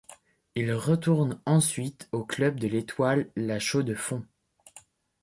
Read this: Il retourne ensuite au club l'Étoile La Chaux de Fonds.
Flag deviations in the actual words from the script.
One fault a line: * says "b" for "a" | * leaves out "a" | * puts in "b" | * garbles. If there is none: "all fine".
* puts in "de"